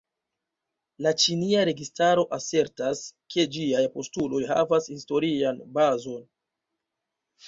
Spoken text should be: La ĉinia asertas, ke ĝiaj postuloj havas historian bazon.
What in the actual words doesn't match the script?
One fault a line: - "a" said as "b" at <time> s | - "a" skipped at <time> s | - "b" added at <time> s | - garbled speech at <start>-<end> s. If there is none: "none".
- "registaro" added at 1.7 s